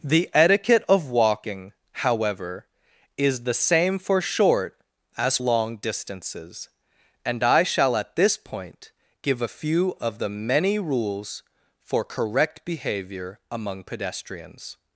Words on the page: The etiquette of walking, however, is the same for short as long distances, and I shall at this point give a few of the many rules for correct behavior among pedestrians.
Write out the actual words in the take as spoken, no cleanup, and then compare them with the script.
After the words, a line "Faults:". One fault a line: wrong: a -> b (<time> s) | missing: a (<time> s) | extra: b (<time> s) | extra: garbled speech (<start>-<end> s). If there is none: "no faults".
The etiquette of walking, however, is the same for short as long distances, and I shall at this point give a few of the many rules for correct behavior among pedestrians.
Faults:
no faults